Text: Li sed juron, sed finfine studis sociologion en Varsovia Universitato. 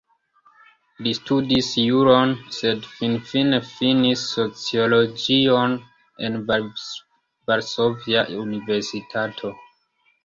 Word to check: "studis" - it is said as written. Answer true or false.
false